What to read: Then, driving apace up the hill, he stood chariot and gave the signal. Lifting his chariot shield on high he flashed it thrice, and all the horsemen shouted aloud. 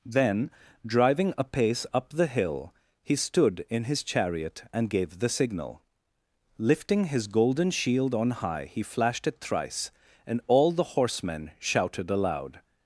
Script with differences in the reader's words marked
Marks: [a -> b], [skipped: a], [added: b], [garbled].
Then, driving apace up the hill, he stood [added: in his] chariot and gave the signal. Lifting his [chariot -> golden] shield on high he flashed it thrice, and all the horsemen shouted aloud.